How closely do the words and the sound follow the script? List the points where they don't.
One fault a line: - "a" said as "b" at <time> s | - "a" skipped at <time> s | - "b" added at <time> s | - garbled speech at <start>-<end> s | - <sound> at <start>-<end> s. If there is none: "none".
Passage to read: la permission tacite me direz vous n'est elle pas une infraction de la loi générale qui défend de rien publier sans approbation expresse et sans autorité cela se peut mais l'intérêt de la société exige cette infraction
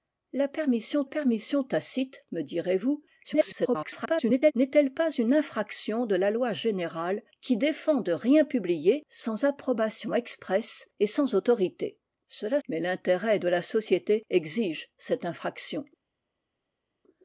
- "permission" added at 1.0 s
- garbled speech at 3.2-4.5 s
- "se peut" skipped at 12.6 s